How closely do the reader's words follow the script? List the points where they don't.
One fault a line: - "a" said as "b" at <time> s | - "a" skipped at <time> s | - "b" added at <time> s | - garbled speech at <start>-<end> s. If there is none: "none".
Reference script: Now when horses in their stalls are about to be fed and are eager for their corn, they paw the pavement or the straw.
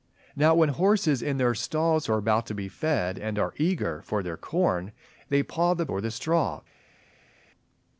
- "pavement" skipped at 5.8 s